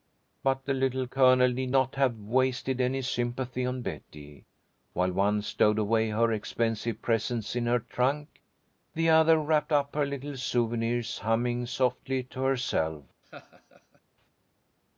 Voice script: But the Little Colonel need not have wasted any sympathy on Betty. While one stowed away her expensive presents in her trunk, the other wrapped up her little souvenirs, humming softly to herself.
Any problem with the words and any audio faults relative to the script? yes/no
yes